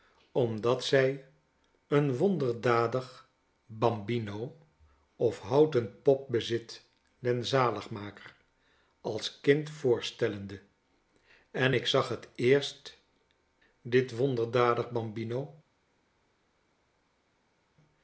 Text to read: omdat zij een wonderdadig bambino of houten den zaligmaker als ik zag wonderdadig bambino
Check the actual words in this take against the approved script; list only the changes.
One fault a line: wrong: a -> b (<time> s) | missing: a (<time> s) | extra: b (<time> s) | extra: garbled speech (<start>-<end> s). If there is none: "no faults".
extra: pop bezit (6.0 s)
extra: kind voorstellende en (9.4 s)
extra: het eerst dit (12.1 s)